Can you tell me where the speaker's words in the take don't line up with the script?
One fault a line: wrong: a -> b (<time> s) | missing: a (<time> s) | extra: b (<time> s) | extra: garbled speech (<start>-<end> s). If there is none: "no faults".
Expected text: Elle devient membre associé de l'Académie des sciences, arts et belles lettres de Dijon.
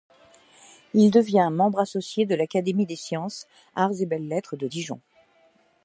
wrong: Elle -> Il (0.9 s)